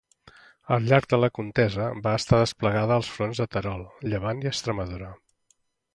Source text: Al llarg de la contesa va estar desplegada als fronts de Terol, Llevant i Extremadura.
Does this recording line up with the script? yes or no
yes